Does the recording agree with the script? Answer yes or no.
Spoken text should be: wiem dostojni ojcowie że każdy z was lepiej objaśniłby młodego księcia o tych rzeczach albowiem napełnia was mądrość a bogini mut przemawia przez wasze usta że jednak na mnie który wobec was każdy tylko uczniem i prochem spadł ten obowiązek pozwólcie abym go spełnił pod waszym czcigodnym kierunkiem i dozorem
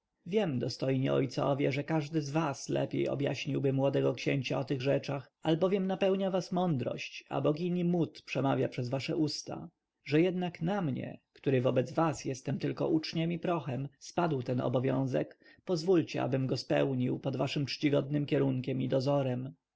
no